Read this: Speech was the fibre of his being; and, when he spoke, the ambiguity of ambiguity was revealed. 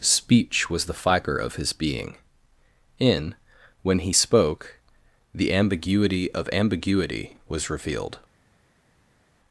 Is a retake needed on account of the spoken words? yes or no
yes